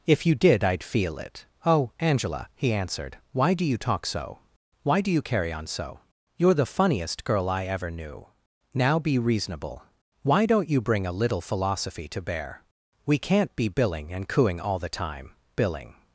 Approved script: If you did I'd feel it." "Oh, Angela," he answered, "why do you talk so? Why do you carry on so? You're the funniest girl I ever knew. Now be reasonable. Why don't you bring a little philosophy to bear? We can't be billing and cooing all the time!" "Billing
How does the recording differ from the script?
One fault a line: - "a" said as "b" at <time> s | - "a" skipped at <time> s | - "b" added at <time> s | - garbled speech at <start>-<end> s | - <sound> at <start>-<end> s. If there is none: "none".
none